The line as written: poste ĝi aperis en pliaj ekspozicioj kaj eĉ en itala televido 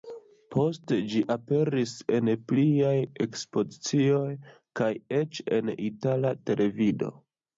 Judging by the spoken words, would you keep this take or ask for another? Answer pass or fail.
pass